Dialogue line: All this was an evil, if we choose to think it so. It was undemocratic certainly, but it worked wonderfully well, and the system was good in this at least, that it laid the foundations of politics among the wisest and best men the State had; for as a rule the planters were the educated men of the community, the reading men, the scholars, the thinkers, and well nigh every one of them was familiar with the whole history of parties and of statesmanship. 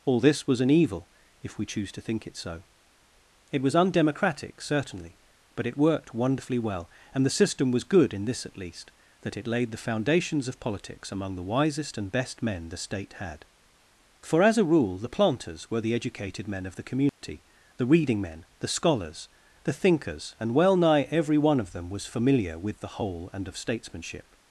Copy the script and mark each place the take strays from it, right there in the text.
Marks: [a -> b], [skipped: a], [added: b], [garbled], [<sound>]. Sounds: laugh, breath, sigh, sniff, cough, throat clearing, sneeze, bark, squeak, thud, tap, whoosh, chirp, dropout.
All this was an evil, if we choose to think it so. It was undemocratic certainly, but it worked wonderfully well, and the system was good in this at least, that it laid the foundations of politics among the wisest and best men the State had; for as a rule the planters were the educated men of the community, [dropout] the reading men, the scholars, the thinkers, and well nigh every one of them was familiar with the whole [skipped: history of parties] and of statesmanship.